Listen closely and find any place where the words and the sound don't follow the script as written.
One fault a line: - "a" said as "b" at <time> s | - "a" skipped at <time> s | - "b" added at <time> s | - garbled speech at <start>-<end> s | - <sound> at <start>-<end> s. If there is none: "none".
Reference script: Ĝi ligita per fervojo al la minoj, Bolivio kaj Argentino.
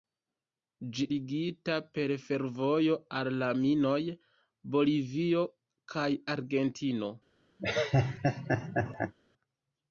- laugh at 7.6-9.1 s